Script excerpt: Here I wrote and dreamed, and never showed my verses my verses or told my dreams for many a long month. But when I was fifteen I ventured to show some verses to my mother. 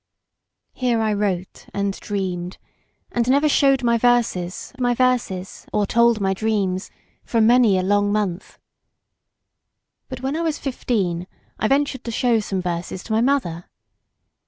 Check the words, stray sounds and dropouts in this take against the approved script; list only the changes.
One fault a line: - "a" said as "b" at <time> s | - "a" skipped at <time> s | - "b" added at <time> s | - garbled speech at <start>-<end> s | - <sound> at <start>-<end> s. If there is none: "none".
none